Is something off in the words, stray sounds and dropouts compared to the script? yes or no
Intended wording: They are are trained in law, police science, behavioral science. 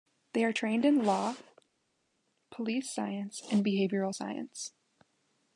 yes